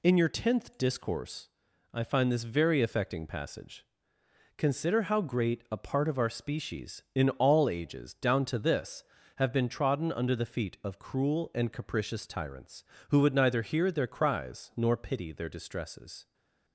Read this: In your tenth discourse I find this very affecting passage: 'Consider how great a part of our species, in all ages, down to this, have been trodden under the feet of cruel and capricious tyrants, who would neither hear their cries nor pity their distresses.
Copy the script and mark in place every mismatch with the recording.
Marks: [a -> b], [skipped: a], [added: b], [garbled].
In your tenth discourse I find this very affecting passage: 'Consider how great a part of our species, in all ages, down to this, have been trodden under the feet of cruel and capricious tyrants, who would neither hear their cries nor pity their distresses.